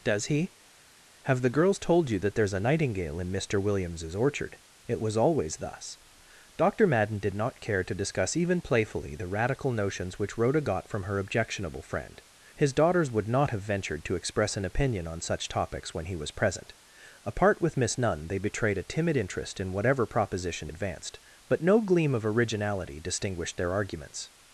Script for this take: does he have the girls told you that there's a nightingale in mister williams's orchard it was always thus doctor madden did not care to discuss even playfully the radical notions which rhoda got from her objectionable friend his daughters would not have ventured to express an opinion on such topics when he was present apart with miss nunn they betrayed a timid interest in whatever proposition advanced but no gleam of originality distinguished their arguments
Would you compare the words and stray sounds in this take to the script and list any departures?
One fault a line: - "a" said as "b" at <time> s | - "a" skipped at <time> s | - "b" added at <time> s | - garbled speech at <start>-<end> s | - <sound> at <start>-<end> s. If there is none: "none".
none